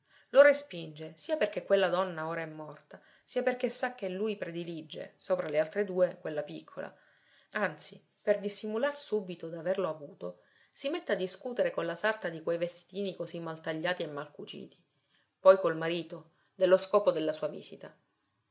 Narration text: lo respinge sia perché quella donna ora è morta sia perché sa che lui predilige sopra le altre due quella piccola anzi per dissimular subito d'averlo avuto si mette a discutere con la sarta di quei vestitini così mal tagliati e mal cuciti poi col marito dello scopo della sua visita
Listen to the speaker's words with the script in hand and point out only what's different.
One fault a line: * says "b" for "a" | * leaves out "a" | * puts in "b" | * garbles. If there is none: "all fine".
all fine